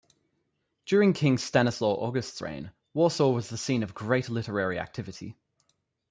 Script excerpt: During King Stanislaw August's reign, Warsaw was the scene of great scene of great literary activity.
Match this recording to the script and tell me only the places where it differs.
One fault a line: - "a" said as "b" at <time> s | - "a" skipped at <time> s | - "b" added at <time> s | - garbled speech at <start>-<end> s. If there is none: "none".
- "scene of great" skipped at 4.3 s